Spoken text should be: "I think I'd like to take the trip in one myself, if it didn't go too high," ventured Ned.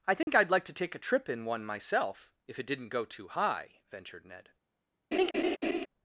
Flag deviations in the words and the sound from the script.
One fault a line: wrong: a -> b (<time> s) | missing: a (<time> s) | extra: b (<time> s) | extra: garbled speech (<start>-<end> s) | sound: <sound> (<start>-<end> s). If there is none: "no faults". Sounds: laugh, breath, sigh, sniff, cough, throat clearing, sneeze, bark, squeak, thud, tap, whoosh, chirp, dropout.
sound: dropout (0.2-0.3 s)
wrong: the -> a (0.9 s)
sound: laugh (5.1-5.9 s)